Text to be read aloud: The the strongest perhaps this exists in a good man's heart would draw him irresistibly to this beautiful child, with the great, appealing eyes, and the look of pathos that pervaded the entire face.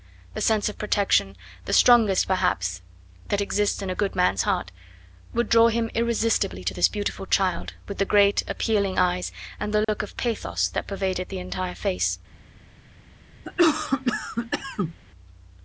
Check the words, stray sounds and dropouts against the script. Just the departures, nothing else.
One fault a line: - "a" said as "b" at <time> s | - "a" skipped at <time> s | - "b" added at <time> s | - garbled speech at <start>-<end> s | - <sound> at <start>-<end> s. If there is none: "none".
- "sense of protection" added at 0.4 s
- "this" said as "that" at 3.3 s
- dropout at 9.8-9.9 s
- cough at 13.4-15.0 s